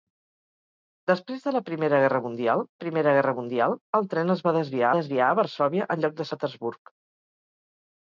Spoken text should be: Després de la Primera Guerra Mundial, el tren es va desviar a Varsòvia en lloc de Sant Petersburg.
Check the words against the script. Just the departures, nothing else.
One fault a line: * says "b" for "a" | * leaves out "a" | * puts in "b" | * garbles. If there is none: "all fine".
* puts in "Primera Guerra Mundial"
* puts in "desviar"
* leaves out "Sant"